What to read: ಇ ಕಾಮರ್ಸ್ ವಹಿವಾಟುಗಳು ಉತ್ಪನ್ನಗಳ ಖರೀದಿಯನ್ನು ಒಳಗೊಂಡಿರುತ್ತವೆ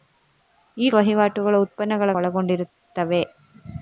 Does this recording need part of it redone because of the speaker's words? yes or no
yes